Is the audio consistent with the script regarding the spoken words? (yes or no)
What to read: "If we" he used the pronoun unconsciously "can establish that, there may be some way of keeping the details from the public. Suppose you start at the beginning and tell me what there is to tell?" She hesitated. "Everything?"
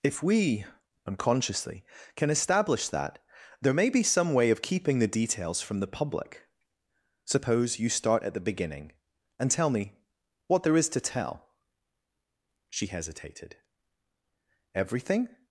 no